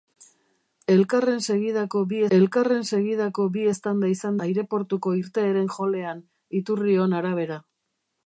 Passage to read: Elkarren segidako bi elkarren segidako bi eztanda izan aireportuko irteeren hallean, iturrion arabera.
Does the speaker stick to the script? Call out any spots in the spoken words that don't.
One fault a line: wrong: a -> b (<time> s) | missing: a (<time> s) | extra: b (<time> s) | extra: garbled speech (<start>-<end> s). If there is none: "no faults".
no faults